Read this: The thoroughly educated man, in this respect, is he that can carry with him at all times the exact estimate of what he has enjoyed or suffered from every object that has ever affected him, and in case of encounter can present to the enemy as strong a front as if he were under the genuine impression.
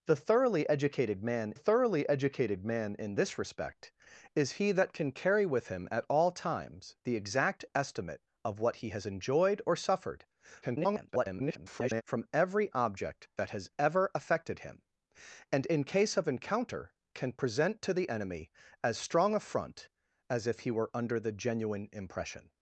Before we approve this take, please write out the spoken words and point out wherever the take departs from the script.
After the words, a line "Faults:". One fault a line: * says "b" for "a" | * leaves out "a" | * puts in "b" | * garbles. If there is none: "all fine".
The thoroughly educated man thoroughly educated man, in this respect, is he that can carry with him at all times the exact estimate of what he has enjoyed or suffered [garbled] from every object that has ever affected him, and in case of encounter can present to the enemy as strong a front as if he were under the genuine impression.
Faults:
* puts in "thoroughly educated man"
* garbles